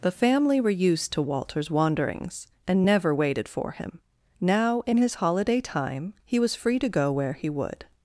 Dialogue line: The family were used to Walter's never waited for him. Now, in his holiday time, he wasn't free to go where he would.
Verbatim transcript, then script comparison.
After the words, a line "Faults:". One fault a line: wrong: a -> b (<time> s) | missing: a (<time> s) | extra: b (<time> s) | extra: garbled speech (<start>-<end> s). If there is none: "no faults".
The family were used to Walter's wanderings, and never waited for him. Now, in his holiday time, he was free to go where he would.
Faults:
extra: wanderings and (1.7 s)
wrong: wasn't -> was (6.4 s)